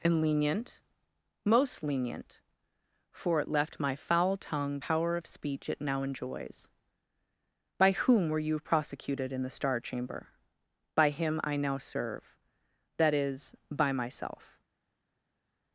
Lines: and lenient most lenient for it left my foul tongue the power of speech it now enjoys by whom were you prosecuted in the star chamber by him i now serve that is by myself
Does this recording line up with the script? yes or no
no